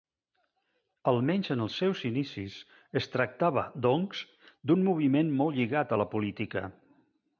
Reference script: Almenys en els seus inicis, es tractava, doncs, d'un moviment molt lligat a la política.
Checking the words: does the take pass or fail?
pass